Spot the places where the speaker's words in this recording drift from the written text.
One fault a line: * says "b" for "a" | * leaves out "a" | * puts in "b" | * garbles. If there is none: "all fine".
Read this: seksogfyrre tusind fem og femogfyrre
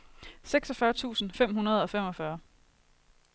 * puts in "hundrede"